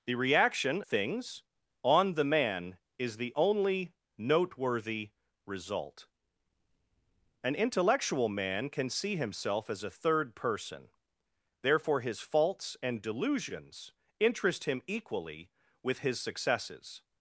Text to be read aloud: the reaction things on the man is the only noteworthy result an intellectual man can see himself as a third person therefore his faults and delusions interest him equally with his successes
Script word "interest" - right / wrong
right